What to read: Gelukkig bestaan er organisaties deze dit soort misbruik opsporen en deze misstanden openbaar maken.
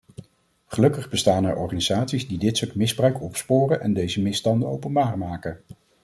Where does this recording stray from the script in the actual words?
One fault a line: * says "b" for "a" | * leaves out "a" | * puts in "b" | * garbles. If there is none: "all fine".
* says "die" for "deze"